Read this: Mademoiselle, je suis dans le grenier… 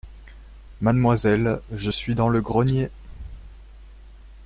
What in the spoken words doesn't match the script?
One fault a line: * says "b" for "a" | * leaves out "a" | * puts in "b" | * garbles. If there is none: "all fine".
all fine